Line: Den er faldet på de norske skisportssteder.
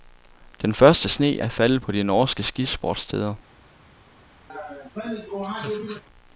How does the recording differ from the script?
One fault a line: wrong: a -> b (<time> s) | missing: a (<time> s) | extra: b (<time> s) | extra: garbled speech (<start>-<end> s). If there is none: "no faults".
extra: første sne (0.7 s)